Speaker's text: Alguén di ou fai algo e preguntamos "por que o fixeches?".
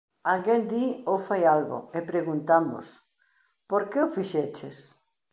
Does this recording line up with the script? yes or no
yes